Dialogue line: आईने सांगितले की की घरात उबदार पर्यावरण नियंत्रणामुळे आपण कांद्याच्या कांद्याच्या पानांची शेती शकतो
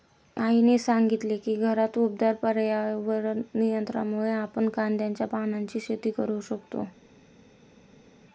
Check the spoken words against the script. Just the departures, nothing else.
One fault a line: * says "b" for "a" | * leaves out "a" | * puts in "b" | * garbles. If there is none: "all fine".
* leaves out "की"
* leaves out "कांद्याच्या"
* puts in "करू"